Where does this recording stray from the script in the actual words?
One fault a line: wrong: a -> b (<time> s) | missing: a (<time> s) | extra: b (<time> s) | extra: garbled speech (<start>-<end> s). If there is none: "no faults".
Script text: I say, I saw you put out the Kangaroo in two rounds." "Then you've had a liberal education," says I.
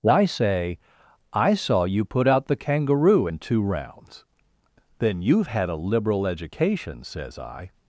no faults